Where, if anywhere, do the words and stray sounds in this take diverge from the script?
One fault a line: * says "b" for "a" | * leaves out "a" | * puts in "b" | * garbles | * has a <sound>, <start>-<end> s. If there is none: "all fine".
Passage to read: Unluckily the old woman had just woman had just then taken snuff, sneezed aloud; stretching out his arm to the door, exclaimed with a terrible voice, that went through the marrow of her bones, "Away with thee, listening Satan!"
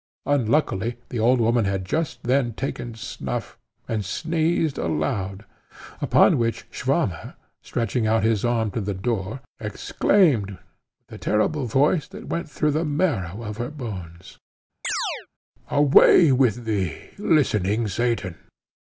* leaves out "woman had just"
* puts in "and"
* puts in "upon which Swammer"
* has a chirp, 14.8-15.3 s